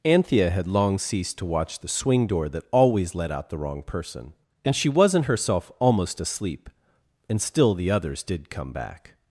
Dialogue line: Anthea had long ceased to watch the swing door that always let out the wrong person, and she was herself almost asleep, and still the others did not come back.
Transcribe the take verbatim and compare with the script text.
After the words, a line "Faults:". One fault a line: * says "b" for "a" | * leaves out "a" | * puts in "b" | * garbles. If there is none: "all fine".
Anthea had long ceased to watch the swing door that always let out the wrong person, and she wasn't herself almost asleep, and still the others did come back.
Faults:
* says "wasn't" for "was"
* leaves out "not"